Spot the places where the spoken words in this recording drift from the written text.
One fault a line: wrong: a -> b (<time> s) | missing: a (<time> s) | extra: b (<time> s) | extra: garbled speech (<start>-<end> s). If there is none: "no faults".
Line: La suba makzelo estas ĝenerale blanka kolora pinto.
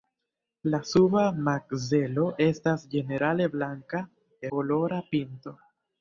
no faults